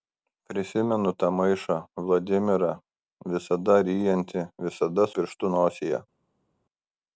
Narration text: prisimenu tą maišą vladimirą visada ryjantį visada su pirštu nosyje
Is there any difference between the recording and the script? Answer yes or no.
yes